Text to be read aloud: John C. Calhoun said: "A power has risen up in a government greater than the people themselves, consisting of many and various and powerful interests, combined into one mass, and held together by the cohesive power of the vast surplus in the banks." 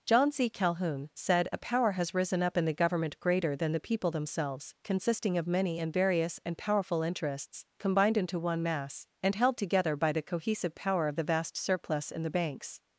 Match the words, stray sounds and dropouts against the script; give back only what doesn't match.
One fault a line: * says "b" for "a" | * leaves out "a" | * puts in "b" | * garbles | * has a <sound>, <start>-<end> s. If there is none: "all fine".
* says "the" for "a"